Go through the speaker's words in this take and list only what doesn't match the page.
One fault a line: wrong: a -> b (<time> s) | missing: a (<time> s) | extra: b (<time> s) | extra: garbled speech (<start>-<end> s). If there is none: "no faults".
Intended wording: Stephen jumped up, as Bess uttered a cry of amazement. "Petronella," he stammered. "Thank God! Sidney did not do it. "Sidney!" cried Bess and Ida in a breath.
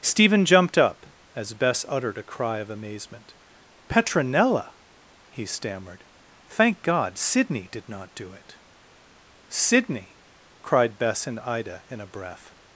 no faults